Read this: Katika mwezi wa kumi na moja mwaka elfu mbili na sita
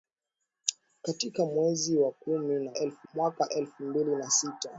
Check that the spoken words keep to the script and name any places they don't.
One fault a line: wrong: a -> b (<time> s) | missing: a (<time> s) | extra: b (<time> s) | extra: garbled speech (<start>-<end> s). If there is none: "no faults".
wrong: moja -> elfu (2.7 s)